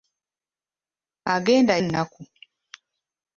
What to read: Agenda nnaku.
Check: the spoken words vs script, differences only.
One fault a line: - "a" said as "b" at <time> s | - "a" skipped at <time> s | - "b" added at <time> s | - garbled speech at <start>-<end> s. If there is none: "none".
none